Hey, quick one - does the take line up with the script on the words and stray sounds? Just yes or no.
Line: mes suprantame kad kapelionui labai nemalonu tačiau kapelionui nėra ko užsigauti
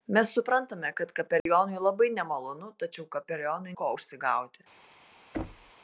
no